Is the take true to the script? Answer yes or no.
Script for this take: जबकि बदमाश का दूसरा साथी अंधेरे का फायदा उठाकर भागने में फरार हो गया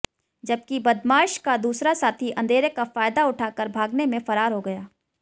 yes